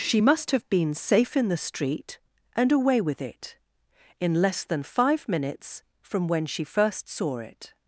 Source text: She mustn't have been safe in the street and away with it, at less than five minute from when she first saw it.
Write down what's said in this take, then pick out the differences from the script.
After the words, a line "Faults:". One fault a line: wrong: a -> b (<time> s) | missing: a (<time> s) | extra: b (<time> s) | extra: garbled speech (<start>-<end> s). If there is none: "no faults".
She must have been safe in the street and away with it, in less than five minutes from when she first saw it.
Faults:
wrong: mustn't -> must (0.2 s)
wrong: at -> in (4.2 s)
wrong: minute -> minutes (5.3 s)